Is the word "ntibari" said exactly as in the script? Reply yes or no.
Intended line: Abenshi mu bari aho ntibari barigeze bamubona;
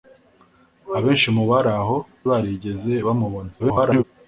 no